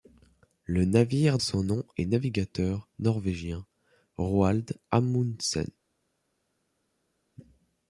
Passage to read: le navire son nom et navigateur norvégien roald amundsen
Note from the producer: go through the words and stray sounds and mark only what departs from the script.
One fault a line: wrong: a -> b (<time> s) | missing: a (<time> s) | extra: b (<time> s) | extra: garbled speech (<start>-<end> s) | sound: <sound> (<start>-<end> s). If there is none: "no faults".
no faults